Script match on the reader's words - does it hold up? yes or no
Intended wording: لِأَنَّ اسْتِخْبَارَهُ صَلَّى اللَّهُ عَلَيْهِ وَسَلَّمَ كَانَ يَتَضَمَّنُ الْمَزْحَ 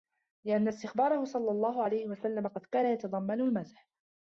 no